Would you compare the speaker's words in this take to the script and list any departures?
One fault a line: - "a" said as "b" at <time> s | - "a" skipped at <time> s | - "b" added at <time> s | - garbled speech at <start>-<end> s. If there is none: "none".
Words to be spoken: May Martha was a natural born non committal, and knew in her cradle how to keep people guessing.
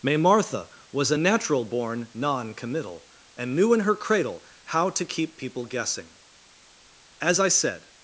- "As I said" added at 7.2 s